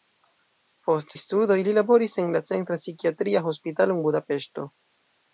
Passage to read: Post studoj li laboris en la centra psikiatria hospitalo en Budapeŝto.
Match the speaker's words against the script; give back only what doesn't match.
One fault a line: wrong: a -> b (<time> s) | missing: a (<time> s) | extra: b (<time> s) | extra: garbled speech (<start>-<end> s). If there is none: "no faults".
no faults